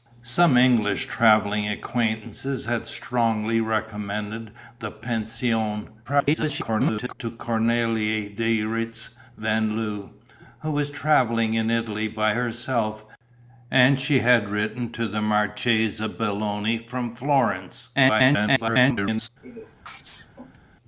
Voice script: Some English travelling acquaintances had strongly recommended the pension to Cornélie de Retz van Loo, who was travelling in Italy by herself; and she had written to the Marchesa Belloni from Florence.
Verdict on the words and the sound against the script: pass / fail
fail